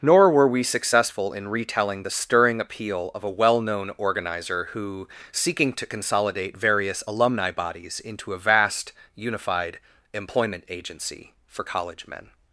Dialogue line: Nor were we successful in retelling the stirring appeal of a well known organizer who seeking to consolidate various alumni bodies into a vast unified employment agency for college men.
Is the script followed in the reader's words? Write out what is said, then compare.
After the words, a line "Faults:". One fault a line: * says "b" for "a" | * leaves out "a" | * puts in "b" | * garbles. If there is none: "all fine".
Nor were we successful in retelling the stirring appeal of a well known organizer who seeking to consolidate various alumni bodies into a vast unified employment agency for college men.
Faults:
all fine